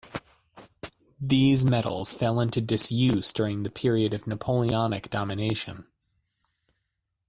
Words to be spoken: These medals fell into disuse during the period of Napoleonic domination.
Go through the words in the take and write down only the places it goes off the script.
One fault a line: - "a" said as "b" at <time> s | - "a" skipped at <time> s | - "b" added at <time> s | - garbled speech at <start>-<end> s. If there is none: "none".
none